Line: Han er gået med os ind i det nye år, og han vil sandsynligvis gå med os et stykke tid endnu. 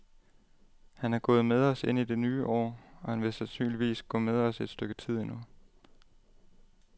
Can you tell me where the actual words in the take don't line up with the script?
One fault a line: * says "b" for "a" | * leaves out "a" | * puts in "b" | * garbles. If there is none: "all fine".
all fine